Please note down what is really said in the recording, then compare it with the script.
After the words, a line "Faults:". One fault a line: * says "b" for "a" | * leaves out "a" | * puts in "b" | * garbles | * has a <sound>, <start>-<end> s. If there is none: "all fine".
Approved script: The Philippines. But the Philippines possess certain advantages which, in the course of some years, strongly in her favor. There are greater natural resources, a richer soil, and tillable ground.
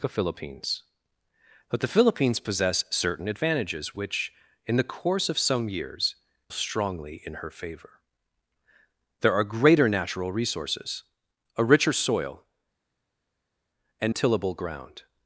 The Philippines. But the Philippines possess certain advantages which, in the course of some years, strongly in her favor. There are greater natural resources, a richer soil, and tillable ground.
Faults:
all fine